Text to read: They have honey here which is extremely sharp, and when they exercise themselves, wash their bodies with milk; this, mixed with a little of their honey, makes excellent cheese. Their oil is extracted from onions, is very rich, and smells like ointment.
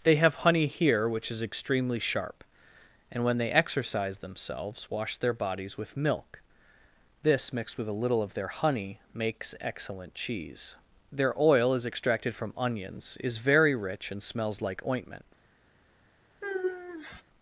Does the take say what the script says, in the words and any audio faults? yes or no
no